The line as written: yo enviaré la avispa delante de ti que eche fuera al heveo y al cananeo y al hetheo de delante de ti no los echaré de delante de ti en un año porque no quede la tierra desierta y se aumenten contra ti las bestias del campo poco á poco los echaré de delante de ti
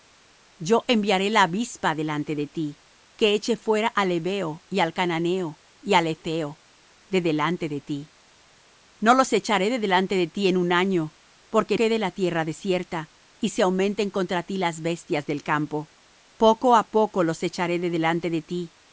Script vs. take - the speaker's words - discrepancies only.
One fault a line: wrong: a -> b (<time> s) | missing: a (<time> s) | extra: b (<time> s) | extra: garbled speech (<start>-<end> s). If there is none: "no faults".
missing: no (11.8 s)